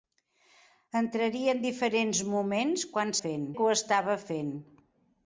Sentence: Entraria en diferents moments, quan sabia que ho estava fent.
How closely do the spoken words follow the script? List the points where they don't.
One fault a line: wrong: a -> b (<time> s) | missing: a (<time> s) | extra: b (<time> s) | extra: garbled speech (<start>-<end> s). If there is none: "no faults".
wrong: sabia -> fent (3.2 s)